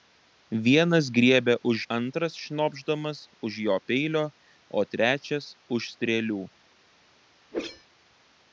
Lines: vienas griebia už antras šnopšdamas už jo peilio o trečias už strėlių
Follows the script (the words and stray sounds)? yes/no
no